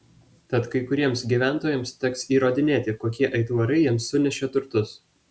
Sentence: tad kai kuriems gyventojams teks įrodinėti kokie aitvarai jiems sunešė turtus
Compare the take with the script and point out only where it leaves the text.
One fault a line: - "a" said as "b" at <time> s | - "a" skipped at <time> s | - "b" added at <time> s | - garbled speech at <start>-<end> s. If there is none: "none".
none